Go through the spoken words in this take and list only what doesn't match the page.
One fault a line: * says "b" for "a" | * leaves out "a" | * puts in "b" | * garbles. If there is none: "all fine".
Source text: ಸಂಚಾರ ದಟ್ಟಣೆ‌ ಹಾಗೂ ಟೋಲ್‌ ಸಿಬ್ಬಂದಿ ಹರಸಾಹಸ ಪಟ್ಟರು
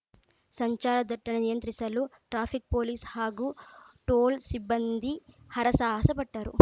* puts in "ನಿಯಂತ್ರಿಸಲು ಟ್ರಾಫಿಕ್ ಪೊಲೀಸ್"